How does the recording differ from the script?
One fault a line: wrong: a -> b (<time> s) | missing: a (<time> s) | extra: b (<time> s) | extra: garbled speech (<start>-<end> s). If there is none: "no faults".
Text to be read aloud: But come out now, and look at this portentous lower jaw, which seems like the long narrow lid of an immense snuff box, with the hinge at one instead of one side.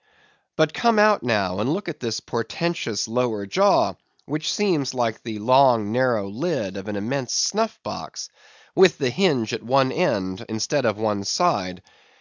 extra: end (9.9 s)